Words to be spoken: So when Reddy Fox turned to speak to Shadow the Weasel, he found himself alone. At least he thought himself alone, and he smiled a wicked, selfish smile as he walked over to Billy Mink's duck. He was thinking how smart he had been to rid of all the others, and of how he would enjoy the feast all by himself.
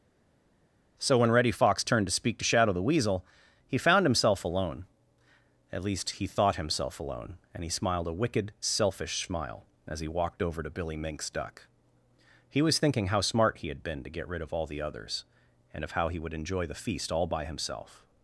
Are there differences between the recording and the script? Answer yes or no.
yes